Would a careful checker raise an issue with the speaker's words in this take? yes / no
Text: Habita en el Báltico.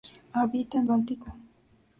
yes